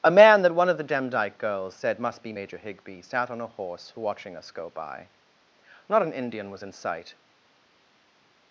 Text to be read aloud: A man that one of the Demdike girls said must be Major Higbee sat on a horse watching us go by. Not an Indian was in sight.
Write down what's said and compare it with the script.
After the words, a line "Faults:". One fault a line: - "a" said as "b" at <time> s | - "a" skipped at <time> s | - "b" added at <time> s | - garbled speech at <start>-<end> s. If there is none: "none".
A man that one of the Demdike girls said must be Major Higbee sat on a horse watching us go by. Not an Indian was in sight.
Faults:
none